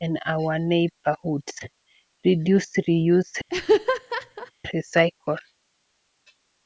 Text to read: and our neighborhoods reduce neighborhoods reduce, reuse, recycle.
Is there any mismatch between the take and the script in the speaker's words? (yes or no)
yes